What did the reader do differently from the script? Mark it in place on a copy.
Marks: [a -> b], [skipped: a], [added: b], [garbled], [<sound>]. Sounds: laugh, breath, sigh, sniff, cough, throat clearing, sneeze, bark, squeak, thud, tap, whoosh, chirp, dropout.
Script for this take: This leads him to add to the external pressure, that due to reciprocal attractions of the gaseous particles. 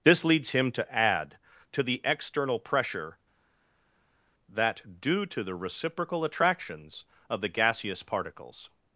This leads him to add to the external pressure, that due to [added: the] reciprocal attractions of the gaseous particles.